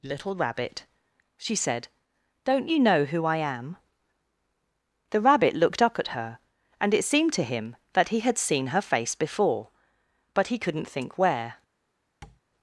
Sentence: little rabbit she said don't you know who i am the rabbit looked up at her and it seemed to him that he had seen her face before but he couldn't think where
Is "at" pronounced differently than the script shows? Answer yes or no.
no